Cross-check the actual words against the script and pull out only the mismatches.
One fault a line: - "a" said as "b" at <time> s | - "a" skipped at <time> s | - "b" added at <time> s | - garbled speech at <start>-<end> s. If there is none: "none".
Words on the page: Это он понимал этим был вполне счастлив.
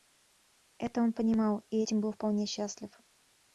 - "и" added at 1.7 s